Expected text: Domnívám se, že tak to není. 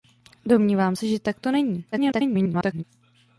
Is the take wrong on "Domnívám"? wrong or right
right